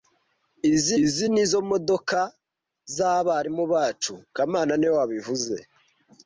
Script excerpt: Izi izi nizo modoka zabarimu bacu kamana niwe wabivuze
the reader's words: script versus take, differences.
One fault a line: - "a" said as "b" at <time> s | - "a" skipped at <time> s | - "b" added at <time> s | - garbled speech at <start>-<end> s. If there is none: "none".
none